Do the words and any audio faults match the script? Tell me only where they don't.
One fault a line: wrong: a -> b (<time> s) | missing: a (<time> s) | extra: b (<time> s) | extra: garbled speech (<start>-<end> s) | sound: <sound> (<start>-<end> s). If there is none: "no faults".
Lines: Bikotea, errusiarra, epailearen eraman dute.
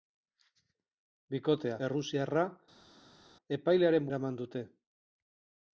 no faults